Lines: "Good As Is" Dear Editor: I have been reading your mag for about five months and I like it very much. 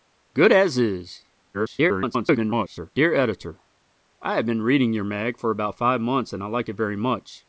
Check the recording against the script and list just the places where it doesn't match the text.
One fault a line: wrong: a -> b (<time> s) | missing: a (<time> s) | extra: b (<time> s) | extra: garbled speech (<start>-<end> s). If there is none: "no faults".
extra: garbled speech (1.5-2.9 s)